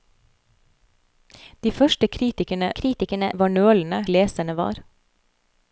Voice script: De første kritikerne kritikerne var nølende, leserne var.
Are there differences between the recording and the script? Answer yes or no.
no